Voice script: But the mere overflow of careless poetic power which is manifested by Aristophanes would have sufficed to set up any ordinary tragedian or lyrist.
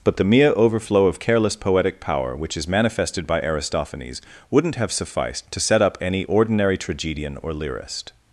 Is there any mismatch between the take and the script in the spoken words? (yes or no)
yes